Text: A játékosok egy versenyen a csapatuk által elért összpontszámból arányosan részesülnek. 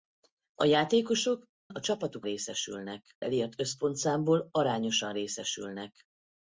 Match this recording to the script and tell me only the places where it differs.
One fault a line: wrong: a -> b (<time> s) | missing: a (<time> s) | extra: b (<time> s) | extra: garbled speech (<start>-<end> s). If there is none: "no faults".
missing: egy versenyen (1.5 s)
wrong: által -> részesülnek (2.2 s)